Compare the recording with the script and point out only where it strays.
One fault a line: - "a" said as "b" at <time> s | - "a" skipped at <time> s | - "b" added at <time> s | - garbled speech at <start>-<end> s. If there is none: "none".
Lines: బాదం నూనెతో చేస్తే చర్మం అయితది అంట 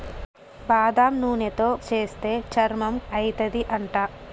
none